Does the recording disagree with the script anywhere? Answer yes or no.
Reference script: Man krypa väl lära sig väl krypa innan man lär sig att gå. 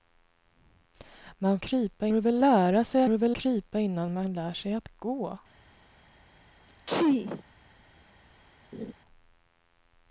no